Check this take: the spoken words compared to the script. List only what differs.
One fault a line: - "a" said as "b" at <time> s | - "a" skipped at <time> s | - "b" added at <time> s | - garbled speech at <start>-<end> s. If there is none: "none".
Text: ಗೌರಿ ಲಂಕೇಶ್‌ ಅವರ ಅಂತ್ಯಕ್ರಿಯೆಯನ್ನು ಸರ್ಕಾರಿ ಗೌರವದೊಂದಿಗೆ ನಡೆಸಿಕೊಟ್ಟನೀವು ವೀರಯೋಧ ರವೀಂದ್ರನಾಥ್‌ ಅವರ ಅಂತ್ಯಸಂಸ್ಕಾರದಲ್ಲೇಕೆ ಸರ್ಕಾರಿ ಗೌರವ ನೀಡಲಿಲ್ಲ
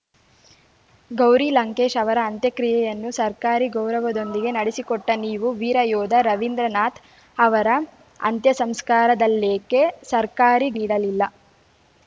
- "ಗೌರವ" skipped at 10.7 s